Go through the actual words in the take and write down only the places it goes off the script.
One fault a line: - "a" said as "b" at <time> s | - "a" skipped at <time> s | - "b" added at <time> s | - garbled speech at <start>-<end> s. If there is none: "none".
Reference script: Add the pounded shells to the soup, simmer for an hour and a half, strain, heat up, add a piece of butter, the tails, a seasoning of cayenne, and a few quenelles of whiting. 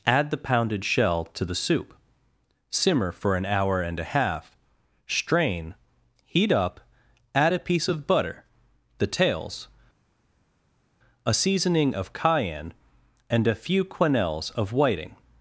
- "shells" said as "shell" at 0.8 s